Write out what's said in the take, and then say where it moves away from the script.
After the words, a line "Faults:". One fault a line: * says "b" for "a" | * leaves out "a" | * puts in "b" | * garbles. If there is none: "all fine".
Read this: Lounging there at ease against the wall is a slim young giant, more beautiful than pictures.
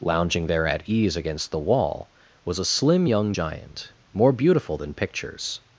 Lounging there at ease against the wall was a slim young giant, more beautiful than pictures.
Faults:
* says "was" for "is"